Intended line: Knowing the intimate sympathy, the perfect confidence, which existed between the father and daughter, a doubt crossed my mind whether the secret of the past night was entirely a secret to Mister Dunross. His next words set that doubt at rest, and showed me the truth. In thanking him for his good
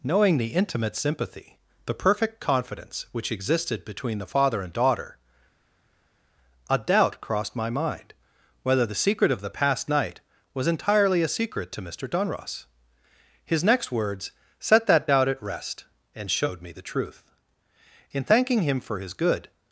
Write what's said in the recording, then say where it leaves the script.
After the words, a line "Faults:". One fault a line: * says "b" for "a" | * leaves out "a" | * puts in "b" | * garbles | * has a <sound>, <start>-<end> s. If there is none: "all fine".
Knowing the intimate sympathy, the perfect confidence, which existed between the father and daughter, a doubt crossed my mind whether the secret of the past night was entirely a secret to Mister Dunross. His next words set that doubt at rest, and showed me the truth. In thanking him for his good
Faults:
all fine